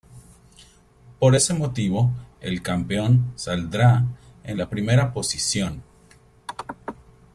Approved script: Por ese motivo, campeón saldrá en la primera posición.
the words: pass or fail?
fail